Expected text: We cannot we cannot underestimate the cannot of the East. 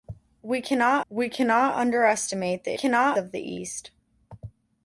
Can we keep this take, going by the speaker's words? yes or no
yes